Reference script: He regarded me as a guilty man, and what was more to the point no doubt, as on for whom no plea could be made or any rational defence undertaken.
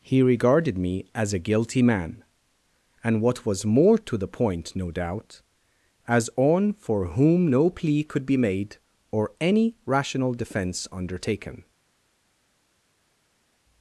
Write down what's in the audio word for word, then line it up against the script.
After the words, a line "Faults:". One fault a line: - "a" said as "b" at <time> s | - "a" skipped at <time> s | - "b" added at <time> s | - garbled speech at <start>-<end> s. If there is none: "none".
He regarded me as a guilty man, and what was more to the point no doubt, as on for whom no plea could be made or any rational defence undertaken.
Faults:
none